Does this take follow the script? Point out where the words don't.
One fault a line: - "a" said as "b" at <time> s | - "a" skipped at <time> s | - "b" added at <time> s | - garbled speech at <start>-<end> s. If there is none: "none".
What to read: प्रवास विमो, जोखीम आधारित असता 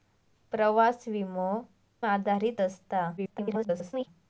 - "जोखीम" skipped at 1.5 s
- garbled speech at 3.2-4.1 s